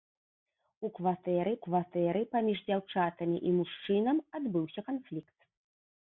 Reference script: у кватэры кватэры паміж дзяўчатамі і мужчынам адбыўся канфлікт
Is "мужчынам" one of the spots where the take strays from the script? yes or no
no